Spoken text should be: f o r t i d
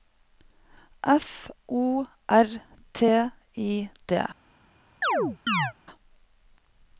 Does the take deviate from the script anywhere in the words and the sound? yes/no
yes